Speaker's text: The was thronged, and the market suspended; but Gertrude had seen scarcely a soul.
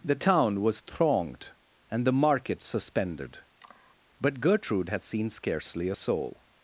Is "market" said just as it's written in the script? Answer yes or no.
yes